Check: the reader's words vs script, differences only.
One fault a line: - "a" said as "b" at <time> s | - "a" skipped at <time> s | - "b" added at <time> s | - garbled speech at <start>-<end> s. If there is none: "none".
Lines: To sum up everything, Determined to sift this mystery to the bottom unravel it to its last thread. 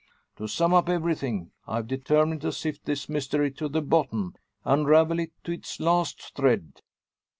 - "I've" added at 1.7 s